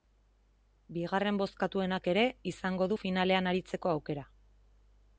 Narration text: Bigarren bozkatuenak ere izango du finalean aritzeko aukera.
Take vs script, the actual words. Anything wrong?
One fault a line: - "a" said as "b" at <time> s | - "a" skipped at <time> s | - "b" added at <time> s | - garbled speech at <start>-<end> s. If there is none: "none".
none